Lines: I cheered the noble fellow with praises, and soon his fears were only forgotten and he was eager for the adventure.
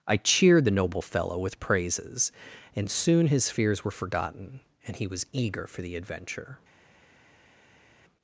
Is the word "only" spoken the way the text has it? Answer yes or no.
no